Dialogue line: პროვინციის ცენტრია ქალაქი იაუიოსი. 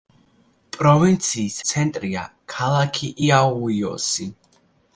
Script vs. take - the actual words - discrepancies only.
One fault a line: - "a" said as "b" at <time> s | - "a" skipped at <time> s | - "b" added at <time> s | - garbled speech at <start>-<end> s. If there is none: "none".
none